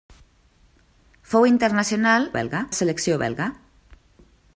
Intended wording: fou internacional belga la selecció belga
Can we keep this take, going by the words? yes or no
yes